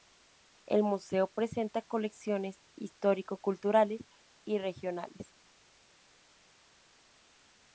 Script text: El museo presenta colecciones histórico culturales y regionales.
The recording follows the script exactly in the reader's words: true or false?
true